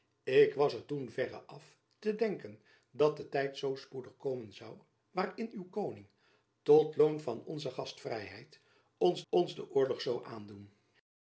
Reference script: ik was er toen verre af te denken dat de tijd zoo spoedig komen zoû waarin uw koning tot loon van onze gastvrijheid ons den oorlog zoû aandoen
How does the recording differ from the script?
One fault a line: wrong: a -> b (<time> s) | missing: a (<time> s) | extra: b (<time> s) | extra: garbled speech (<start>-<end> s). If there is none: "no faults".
extra: ons (9.3 s)